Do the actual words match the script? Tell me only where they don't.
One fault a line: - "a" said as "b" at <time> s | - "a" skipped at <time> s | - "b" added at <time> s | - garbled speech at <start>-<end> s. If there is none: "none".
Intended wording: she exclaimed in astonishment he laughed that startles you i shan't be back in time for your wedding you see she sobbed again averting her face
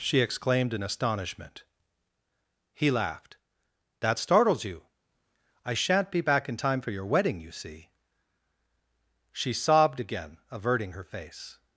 none